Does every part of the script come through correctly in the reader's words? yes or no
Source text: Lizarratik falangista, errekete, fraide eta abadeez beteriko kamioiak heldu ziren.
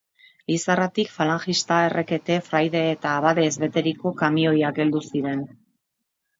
yes